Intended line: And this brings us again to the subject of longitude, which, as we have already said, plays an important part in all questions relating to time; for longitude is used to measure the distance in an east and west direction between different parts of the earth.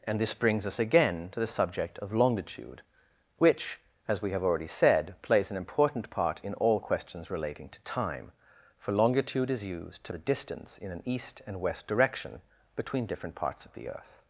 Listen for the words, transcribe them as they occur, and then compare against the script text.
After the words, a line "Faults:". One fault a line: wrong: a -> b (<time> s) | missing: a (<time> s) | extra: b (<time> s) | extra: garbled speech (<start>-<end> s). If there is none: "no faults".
And this brings us again to the subject of longitude, which, as we have already said, plays an important part in all questions relating to time; for longitude is used to the distance in an east and west direction between different parts of the earth.
Faults:
missing: measure (10.1 s)